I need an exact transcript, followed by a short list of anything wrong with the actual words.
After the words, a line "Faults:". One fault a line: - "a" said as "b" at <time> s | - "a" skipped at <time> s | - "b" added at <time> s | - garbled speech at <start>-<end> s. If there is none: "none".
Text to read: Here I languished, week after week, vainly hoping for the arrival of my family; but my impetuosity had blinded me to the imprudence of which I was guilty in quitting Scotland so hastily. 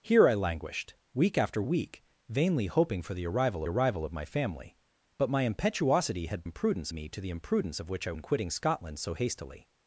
Here I languished, week after week, vainly hoping for the arrival arrival of my family; but my impetuosity had imprudence me to the imprudence of which I in quitting Scotland so hastily.
Faults:
- "arrival" added at 3.7 s
- "blinded" said as "imprudence" at 6.4 s
- "was guilty" skipped at 8.1 s